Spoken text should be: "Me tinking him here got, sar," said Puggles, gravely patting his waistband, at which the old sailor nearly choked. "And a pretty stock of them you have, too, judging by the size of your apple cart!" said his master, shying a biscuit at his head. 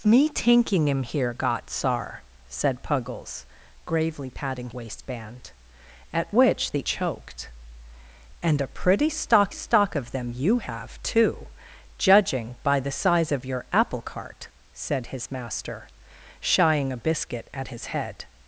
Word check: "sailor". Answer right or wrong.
wrong